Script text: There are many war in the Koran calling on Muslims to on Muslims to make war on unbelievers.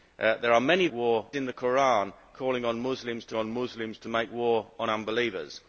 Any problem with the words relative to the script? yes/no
no